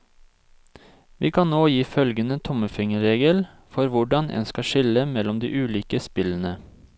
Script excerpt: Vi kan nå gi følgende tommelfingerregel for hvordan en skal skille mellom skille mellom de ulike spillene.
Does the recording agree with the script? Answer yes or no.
no